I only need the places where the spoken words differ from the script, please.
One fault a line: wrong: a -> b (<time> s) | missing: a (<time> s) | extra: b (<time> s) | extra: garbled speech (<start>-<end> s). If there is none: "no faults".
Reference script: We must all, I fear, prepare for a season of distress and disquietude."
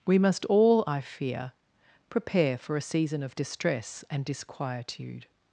no faults